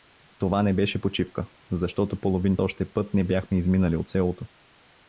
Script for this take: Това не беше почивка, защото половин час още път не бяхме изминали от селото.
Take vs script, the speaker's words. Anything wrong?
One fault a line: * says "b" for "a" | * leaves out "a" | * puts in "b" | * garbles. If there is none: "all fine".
* leaves out "час"